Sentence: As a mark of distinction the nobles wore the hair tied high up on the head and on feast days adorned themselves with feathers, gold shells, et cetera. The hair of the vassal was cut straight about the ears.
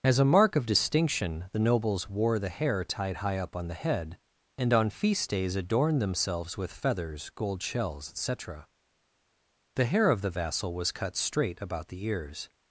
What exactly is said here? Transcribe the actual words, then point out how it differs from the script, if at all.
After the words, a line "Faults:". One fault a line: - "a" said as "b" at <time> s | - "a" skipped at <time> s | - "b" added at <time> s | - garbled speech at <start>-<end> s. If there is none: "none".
As a mark of distinction the nobles wore the hair tied high up on the head and on feast days adorned themselves with feathers, gold shells, et cetera. The hair of the vassal was cut straight about the ears.
Faults:
none